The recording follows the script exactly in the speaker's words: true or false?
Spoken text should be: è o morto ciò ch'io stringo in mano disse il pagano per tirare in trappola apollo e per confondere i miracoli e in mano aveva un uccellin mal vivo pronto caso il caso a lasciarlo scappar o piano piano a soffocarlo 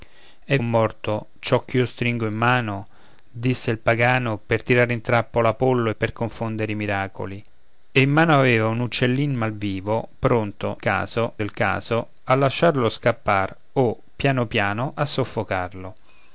true